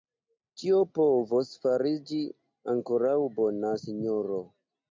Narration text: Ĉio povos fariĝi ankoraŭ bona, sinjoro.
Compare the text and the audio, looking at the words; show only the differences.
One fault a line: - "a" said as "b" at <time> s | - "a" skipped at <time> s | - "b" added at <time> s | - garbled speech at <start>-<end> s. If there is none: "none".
none